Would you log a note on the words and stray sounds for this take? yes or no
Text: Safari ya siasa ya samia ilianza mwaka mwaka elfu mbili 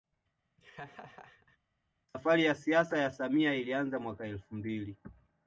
yes